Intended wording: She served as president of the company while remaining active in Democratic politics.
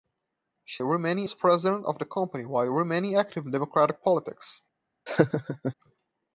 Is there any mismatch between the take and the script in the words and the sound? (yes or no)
yes